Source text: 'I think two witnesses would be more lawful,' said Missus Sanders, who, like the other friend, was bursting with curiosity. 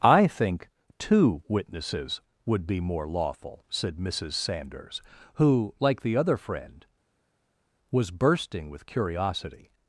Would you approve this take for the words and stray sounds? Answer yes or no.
yes